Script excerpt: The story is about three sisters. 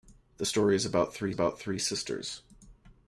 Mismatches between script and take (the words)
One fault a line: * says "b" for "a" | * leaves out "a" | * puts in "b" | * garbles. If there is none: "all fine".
* puts in "about three"